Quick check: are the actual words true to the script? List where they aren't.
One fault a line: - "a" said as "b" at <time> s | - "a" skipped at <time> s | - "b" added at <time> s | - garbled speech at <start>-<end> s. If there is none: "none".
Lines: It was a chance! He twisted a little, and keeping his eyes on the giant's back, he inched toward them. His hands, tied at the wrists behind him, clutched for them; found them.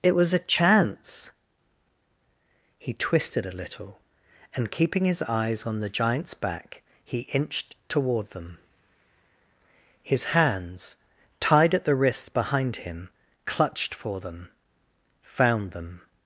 none